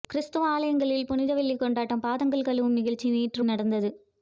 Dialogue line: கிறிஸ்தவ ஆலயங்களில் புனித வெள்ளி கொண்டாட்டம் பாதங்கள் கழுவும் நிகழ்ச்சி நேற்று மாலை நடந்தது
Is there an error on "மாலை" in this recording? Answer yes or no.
yes